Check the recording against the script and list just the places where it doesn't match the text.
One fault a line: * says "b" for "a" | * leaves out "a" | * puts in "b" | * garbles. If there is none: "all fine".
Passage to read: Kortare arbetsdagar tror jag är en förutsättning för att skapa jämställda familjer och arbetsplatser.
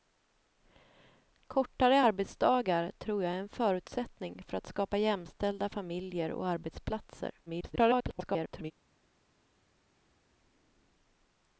* garbles